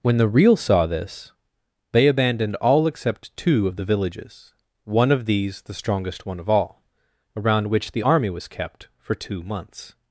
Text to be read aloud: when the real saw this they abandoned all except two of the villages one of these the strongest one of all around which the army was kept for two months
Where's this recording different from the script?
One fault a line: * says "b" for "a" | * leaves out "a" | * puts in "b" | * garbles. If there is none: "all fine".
all fine